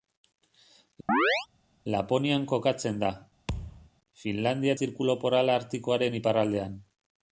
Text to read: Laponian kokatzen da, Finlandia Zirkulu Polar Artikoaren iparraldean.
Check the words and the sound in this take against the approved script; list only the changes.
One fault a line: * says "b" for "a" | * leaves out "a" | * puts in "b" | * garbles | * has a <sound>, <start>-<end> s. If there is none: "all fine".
* has a chirp, 1.1-1.5 s
* has a thud, 3.5-3.9 s